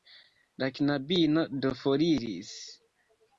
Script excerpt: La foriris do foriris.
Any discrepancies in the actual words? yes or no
yes